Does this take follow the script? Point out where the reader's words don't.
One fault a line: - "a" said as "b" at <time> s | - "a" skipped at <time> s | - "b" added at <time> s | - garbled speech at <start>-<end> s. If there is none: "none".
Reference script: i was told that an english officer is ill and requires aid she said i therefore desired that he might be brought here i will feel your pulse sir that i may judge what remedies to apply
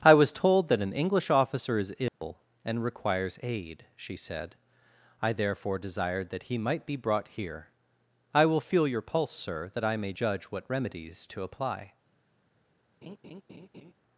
none